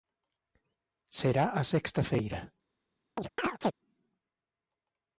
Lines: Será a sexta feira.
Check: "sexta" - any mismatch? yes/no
no